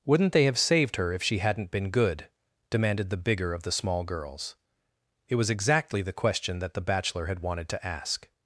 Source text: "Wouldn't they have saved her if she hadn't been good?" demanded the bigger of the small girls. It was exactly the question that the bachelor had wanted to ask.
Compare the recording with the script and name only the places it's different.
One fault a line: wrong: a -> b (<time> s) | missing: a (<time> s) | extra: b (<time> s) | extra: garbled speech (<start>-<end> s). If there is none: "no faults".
no faults